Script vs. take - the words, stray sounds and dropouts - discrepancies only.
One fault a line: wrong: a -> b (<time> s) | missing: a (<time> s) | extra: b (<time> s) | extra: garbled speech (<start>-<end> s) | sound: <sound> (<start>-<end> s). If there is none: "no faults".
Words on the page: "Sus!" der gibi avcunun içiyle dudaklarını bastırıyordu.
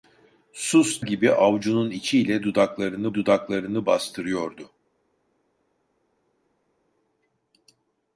missing: der (1.0 s)
extra: dudaklarını (3.1 s)